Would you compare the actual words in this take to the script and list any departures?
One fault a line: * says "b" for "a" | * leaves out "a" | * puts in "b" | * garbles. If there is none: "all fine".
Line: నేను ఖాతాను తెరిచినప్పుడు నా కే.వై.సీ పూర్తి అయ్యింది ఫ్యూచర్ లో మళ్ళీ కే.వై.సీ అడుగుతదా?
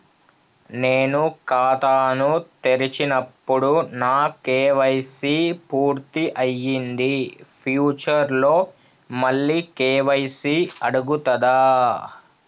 all fine